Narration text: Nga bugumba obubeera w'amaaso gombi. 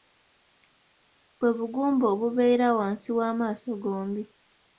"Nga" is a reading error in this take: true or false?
true